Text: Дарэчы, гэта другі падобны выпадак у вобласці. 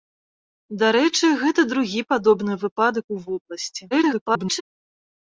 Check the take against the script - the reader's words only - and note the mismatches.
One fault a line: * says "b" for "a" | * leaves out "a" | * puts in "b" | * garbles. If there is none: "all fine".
* garbles